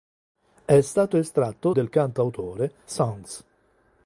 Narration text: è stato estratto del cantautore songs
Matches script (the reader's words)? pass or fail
pass